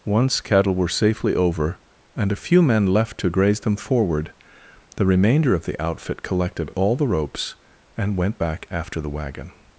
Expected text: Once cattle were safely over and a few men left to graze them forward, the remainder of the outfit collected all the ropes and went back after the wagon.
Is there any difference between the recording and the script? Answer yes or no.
no